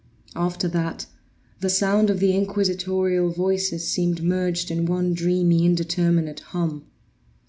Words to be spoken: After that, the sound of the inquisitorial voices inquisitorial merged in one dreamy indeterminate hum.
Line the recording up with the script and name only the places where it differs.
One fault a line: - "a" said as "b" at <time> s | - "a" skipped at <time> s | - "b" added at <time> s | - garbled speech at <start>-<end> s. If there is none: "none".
- "inquisitorial" said as "seemed" at 3.8 s